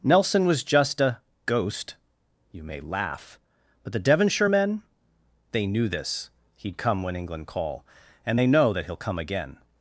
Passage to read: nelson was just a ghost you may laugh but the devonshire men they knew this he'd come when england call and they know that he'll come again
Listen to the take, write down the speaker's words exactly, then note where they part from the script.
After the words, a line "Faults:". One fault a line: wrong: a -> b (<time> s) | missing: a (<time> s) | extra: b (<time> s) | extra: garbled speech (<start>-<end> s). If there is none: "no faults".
nelson was just a ghost you may laugh but the devonshire men they knew this he'd come when england call and they know that he'll come again
Faults:
no faults